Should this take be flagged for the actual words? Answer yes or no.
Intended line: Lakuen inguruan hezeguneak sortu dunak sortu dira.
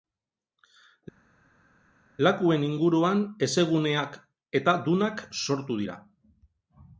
yes